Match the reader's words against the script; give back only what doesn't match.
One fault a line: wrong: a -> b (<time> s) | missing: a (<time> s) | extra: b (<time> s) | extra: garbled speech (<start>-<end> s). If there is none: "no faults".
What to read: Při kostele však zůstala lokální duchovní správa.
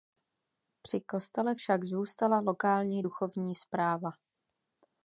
no faults